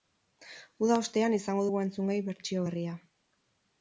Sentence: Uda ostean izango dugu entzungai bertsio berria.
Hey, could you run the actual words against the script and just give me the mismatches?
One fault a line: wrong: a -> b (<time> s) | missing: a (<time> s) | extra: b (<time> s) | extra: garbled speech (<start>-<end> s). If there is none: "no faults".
no faults